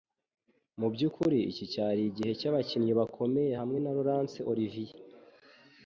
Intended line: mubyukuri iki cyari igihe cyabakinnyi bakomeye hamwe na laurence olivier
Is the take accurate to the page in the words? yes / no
yes